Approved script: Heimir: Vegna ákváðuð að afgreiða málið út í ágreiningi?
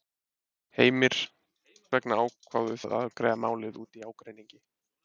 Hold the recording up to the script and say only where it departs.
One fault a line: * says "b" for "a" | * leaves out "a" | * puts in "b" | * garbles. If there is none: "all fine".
all fine